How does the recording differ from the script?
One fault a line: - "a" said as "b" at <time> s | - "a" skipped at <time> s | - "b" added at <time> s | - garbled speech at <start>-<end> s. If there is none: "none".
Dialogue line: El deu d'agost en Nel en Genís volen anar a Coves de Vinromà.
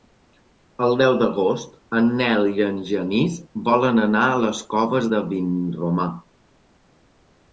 - "i" added at 2.5 s
- "les" added at 4.5 s